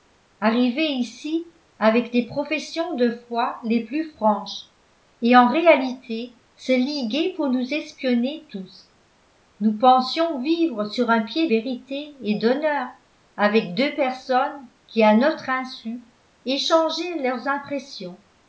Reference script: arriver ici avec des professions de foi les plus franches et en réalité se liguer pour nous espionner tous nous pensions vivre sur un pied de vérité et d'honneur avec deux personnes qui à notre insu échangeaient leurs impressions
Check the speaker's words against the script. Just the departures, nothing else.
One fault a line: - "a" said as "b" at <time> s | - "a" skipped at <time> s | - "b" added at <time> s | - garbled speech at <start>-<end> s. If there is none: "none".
- "de" skipped at 11.5 s